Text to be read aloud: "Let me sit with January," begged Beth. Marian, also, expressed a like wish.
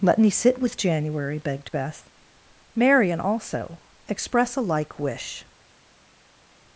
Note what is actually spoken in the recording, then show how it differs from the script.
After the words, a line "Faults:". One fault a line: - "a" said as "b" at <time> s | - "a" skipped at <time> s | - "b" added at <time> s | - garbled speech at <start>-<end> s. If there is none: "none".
"Let me sit with January," begged Beth. Marian, also, express a like wish.
Faults:
- "expressed" said as "express" at 4.1 s